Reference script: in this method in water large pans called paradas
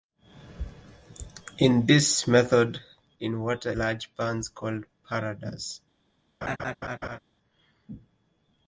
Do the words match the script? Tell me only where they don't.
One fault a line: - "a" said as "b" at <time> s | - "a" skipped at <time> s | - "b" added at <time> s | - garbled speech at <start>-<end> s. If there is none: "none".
none